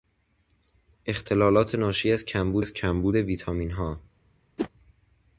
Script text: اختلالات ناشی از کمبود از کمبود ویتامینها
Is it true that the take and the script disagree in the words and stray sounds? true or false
true